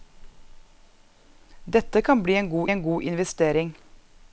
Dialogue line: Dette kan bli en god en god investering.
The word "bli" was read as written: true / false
true